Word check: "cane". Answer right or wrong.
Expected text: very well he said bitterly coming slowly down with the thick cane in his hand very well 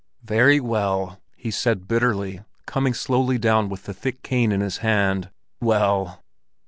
right